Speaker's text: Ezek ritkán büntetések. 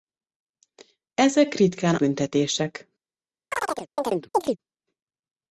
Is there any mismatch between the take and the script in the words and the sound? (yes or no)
yes